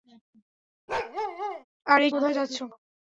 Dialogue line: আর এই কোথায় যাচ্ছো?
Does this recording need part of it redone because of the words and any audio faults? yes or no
yes